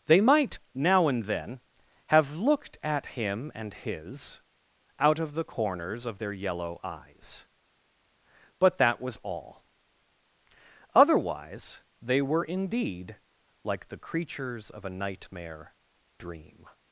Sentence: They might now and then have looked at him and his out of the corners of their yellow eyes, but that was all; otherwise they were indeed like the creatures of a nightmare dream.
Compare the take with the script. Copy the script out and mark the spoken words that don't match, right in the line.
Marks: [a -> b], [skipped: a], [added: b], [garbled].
They might now and then have looked at him and his out of the corners of their yellow eyes, but that was all; otherwise they were indeed like the creatures of a nightmare dream.